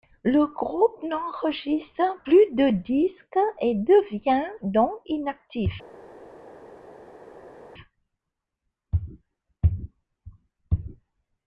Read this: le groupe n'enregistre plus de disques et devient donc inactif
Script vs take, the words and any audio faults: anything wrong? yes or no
no